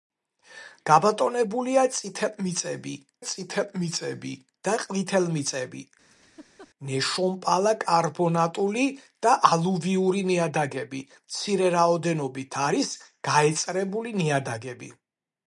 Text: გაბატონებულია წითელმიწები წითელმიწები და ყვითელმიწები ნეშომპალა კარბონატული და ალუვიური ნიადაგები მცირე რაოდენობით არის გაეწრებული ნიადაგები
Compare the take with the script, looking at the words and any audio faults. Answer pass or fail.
fail